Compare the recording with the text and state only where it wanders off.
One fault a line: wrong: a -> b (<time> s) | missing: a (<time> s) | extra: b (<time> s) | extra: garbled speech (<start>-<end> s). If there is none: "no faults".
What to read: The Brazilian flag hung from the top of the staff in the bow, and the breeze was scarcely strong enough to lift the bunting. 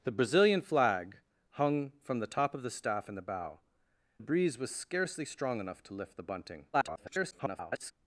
missing: and (3.6 s)
extra: garbled speech (6.7-7.9 s)